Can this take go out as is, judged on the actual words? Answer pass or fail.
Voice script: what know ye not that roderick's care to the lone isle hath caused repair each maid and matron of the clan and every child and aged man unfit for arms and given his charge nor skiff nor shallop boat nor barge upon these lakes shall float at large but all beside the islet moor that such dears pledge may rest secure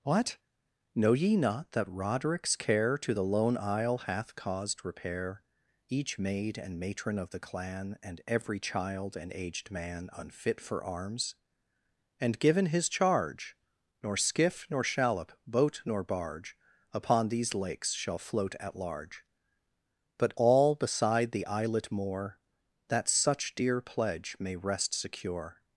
fail